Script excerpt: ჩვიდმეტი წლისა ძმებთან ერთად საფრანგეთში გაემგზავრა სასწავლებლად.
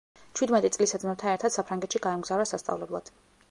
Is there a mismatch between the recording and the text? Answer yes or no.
no